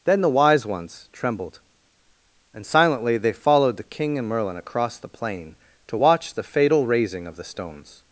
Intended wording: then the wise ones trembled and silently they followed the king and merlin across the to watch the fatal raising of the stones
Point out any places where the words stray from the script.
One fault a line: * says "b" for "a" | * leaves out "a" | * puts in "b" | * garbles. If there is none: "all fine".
* puts in "plain"